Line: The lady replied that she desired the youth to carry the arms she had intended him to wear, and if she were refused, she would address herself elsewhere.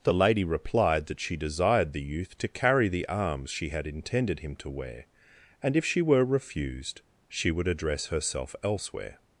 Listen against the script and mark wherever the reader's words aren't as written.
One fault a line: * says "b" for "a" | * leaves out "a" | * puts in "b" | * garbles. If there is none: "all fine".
all fine